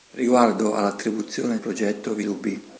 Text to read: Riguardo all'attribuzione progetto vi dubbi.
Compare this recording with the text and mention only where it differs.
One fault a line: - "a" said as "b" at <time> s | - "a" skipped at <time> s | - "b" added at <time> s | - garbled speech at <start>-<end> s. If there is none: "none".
none